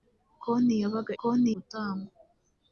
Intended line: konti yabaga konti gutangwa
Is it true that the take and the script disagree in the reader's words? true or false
false